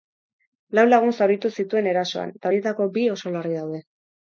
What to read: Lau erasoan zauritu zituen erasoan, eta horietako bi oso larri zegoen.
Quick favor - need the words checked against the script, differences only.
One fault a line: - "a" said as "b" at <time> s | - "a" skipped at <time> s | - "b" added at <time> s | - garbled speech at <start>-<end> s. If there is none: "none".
- "erasoan" said as "lagun" at 0.9 s
- "zegoen" said as "daude" at 3.6 s